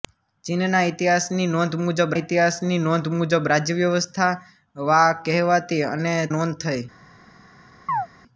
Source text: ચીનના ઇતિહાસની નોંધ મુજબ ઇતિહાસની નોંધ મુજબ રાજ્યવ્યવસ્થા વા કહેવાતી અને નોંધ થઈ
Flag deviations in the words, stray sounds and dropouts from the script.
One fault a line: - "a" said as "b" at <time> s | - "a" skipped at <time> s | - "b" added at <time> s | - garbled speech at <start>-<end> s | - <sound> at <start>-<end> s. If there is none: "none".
- chirp at 7.9-8.1 s